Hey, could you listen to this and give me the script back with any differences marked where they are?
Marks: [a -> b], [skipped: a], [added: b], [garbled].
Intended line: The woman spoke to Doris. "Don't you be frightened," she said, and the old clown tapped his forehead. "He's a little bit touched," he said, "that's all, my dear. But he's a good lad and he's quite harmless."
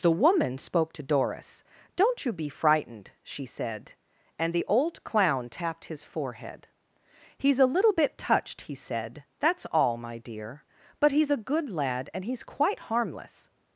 The woman spoke to Doris. "Don't you be frightened," she said, and the old clown tapped his forehead. "He's a little bit touched," he said, "that's all, my dear. But he's a good lad and he's quite harmless."